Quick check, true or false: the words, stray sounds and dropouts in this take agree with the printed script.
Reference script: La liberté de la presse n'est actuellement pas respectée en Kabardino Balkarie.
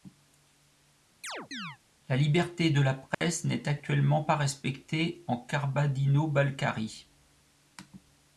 false